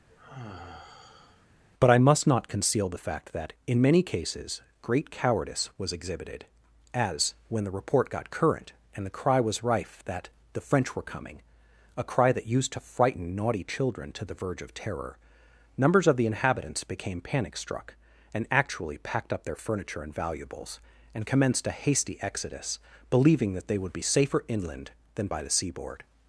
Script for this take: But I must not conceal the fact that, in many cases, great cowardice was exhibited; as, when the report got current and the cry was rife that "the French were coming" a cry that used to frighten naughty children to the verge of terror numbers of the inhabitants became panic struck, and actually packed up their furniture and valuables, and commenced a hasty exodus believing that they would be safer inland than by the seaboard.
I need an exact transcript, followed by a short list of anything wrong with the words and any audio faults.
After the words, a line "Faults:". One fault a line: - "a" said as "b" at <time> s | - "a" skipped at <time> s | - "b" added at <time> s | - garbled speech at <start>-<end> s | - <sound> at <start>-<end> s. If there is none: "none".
But I must not conceal the fact that, in many cases, great cowardice was exhibited; as, when the report got current and the cry was rife that "the French were coming" a cry that used to frighten naughty children to the verge of terror numbers of the inhabitants became panic struck, and actually packed up their furniture and valuables, and commenced a hasty exodus believing that they would be safer inland than by the seaboard.
Faults:
- sigh at 0.1-1.5 s